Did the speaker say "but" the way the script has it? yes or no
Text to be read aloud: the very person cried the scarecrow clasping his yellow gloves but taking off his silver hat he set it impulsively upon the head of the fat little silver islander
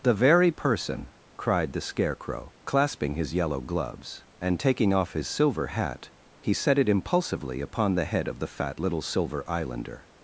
no